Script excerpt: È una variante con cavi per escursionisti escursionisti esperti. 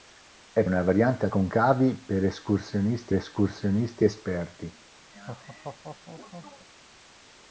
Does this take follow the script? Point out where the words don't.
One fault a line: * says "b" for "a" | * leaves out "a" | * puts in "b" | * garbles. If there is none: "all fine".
all fine